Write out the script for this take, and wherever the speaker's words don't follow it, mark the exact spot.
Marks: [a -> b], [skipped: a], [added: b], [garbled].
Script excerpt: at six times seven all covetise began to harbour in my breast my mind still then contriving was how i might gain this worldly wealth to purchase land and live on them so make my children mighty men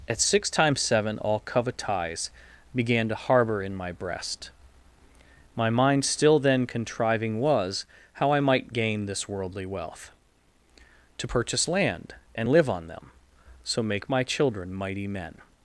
at six times seven all covetise began to harbour in my breast my mind still then contriving was how i might gain this worldly wealth to purchase land and live on them so make my children mighty men